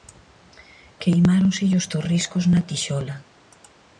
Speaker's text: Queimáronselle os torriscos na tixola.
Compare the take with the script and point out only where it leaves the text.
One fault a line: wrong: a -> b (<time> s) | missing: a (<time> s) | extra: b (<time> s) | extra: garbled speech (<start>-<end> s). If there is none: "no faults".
no faults